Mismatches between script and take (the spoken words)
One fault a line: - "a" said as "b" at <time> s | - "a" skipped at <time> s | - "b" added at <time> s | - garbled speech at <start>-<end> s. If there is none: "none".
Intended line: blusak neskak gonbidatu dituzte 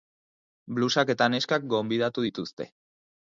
- "eta" added at 1.1 s